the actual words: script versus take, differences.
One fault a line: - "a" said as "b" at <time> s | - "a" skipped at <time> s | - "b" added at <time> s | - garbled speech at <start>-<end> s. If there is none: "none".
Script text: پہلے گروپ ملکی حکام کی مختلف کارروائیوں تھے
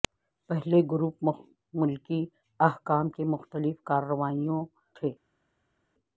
none